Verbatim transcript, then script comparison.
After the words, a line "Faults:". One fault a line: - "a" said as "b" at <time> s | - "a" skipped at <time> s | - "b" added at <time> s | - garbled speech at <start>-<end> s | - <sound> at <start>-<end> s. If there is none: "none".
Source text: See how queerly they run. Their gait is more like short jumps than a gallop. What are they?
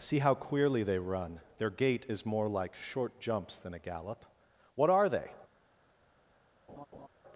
See how queerly they run. Their gait is more like short jumps than a gallop. What are they?
Faults:
- laugh at 6.7-7.1 s